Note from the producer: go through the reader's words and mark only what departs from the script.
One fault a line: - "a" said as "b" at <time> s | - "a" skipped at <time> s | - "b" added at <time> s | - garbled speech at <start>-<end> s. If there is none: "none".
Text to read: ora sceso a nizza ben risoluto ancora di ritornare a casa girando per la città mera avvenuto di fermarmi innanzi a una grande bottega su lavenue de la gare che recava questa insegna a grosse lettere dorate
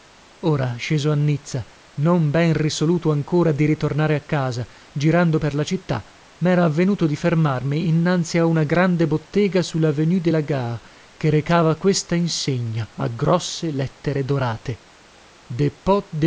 - "non" added at 1.9 s